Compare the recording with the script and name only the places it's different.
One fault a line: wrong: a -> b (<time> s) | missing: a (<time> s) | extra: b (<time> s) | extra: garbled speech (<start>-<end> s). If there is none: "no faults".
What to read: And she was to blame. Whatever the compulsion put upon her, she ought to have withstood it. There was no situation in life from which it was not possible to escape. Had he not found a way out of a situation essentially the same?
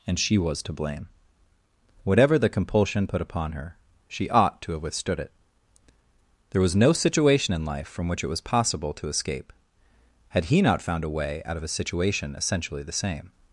missing: not (8.4 s)